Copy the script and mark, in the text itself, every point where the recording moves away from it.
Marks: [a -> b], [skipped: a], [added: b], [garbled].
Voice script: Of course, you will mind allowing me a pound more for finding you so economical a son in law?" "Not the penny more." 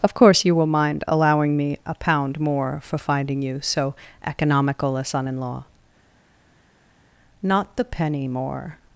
Of course, you will mind allowing me a pound more for finding you so economical a son in law?" "Not the penny more."